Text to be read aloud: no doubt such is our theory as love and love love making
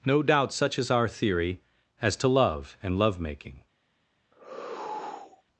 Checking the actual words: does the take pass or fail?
fail